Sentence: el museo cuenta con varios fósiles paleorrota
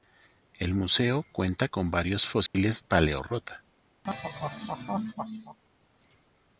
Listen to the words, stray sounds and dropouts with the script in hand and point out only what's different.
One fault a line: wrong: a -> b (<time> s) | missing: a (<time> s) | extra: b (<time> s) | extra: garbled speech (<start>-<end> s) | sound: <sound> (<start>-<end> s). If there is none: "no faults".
sound: dropout (2.5-2.5 s)
sound: laugh (4.0-5.6 s)